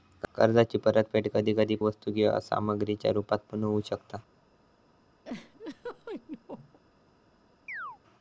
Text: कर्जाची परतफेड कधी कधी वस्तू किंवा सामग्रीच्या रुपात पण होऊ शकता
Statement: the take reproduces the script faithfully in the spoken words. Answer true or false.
true